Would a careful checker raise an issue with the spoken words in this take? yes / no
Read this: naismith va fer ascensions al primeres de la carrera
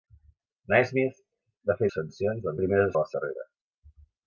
no